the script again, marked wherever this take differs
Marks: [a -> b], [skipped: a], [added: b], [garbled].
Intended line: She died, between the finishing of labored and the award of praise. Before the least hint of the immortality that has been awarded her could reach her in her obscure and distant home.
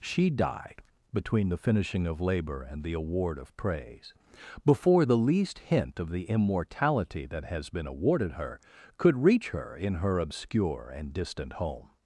She died, between the finishing of [labored -> labor] and the award of praise. Before the least hint of the immortality that has been awarded her could reach her in her obscure and distant home.